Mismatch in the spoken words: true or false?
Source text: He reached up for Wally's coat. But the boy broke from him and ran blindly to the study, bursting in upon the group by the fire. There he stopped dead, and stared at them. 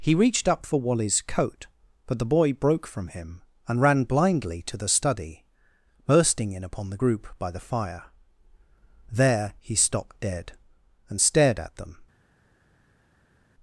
false